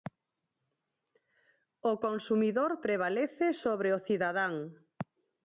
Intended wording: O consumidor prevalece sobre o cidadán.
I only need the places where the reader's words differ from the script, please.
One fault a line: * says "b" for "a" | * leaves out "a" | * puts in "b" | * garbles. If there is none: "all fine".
all fine